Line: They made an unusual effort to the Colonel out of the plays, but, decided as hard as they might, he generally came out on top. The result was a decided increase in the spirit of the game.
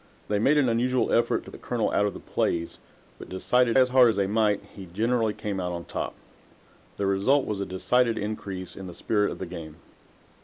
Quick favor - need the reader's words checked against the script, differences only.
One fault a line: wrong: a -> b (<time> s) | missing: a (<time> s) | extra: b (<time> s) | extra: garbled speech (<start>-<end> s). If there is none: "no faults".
no faults